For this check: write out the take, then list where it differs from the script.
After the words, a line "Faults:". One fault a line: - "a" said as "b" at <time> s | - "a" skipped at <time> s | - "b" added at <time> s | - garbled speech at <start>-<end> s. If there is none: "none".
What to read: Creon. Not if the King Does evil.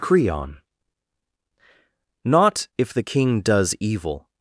Creon. Not if the King Does evil.
Faults:
none